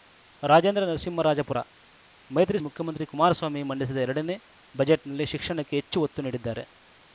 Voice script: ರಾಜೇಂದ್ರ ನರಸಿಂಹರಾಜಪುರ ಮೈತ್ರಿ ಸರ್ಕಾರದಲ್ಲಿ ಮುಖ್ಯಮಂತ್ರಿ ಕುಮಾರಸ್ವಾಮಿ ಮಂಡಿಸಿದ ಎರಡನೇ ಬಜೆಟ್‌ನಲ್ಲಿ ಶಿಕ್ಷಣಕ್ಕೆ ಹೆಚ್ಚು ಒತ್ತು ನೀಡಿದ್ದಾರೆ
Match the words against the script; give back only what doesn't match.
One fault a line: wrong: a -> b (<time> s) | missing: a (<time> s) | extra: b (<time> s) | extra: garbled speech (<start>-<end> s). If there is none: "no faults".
missing: ಸರ್ಕಾರದಲ್ಲಿ (2.6 s)